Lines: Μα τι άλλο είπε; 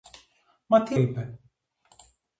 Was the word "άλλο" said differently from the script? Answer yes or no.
yes